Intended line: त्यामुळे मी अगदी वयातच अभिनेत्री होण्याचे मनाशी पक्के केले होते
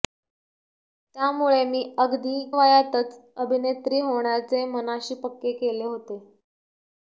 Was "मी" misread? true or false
false